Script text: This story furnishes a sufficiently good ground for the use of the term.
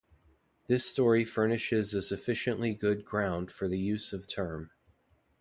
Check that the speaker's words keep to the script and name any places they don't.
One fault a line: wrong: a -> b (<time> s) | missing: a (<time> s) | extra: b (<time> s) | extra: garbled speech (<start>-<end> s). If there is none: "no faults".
missing: the (4.3 s)